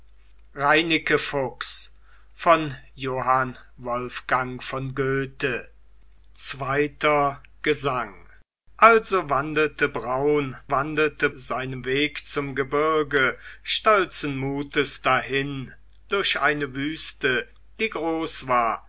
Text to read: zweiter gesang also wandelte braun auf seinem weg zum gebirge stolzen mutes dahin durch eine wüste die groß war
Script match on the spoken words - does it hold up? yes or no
no